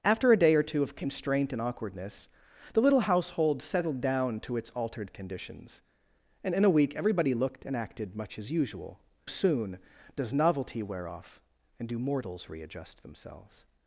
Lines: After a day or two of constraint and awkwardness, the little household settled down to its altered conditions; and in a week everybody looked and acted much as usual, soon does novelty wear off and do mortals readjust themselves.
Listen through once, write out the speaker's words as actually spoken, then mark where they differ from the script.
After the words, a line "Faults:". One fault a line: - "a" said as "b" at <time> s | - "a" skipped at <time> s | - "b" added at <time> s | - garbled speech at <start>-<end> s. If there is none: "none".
After a day or two of constraint and awkwardness, the little household settled down to its altered conditions; and in a week everybody looked and acted much as usual, soon does novelty wear off and do mortals readjust themselves.
Faults:
none